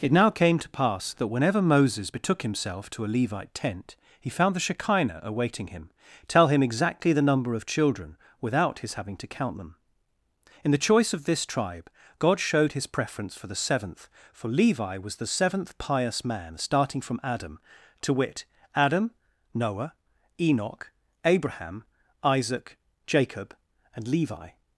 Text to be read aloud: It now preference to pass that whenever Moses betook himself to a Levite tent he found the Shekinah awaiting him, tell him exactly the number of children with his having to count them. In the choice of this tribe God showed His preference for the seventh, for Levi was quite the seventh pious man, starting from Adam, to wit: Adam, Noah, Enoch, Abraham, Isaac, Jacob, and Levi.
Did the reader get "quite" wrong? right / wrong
wrong